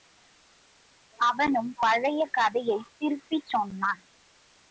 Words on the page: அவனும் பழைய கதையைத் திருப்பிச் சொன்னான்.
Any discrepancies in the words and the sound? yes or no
no